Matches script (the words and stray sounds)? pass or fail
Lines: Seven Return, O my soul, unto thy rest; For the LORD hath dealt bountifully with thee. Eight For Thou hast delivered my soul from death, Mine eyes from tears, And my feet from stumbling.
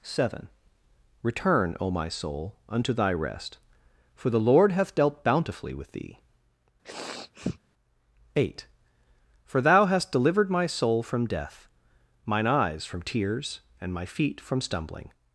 fail